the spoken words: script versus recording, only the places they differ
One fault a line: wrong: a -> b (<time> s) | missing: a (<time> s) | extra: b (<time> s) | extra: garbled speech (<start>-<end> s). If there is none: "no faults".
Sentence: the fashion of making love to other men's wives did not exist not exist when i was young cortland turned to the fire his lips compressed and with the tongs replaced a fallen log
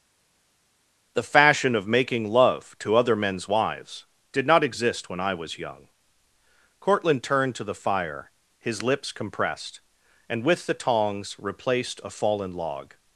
missing: not exist (5.1 s)